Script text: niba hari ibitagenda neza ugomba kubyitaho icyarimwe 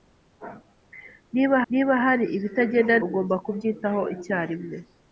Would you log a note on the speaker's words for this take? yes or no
yes